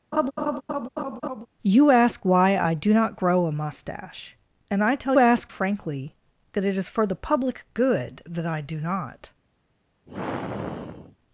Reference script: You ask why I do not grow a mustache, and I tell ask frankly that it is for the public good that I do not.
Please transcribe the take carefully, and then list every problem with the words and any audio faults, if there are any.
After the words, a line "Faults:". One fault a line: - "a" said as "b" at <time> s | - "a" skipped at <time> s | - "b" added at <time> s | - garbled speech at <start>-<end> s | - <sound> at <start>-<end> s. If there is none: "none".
You ask why I do not grow a mustache, and I tell ask frankly that it is for the public good that I do not.
Faults:
- laugh at 0.1-1.5 s
- sigh at 10.1-11.2 s